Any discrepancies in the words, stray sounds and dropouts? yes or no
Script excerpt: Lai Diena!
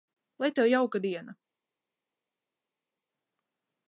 yes